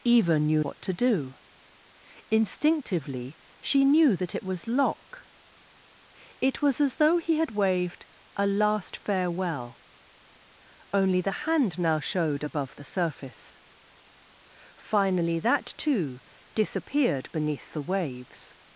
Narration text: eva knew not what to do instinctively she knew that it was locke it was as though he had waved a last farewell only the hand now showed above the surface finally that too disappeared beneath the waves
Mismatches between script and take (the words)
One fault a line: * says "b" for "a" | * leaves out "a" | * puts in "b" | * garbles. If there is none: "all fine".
* leaves out "not"